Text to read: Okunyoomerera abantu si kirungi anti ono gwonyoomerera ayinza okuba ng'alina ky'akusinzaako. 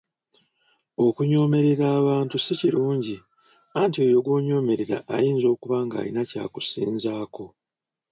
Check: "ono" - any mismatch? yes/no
yes